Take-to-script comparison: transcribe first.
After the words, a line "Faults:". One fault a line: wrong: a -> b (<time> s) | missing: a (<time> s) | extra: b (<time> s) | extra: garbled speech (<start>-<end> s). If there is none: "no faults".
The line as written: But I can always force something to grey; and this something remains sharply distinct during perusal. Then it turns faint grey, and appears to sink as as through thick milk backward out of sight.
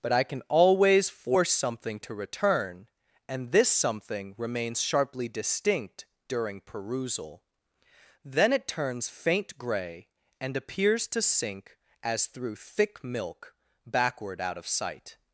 But I can always force something to return; and this something remains sharply distinct during perusal. Then it turns faint grey, and appears to sink as through thick milk backward out of sight.
Faults:
wrong: grey -> return (2.1 s)
missing: as (12.3 s)